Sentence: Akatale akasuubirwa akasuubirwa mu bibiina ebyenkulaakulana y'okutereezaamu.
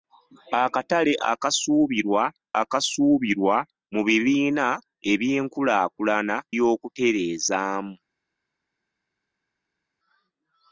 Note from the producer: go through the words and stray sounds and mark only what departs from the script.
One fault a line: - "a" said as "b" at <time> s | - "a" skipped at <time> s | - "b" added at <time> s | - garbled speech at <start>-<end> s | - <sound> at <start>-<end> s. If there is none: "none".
none